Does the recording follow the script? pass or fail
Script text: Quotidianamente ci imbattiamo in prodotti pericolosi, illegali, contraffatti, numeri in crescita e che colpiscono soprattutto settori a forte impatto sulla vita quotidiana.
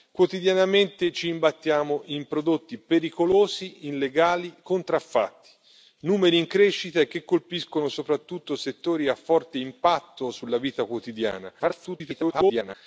fail